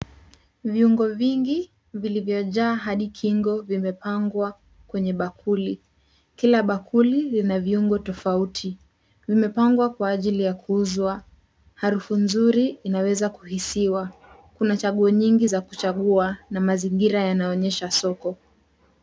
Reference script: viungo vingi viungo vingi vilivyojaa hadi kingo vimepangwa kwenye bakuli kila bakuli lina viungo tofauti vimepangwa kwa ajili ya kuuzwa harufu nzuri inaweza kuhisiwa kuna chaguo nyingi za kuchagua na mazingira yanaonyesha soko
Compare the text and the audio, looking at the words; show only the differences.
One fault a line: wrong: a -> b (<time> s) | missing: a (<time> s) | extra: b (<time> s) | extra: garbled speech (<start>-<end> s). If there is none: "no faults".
missing: viungo vingi (1.7 s)